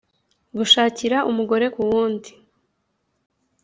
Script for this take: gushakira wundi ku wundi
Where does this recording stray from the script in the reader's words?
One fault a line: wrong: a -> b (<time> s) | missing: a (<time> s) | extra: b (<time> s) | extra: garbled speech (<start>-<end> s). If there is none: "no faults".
wrong: wundi -> umugore (1.3 s)